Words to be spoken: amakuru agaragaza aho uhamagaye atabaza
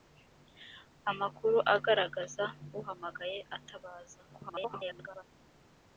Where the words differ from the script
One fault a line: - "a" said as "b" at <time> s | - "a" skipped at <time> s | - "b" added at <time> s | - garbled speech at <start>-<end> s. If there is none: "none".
- "aho" skipped at 2.5 s
- garbled speech at 4.3-5.2 s